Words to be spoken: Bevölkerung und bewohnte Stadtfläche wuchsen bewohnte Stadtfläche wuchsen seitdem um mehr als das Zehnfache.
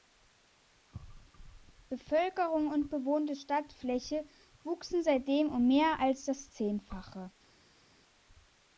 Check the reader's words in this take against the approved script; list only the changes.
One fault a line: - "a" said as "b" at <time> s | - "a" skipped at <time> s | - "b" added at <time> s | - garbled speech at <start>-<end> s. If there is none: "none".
- "bewohnte Stadtfläche wuchsen" skipped at 5.0 s